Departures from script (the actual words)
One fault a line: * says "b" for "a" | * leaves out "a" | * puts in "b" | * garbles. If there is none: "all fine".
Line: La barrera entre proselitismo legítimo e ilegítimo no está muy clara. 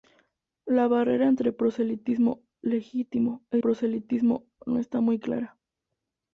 * says "proselitismo" for "ilegítimo"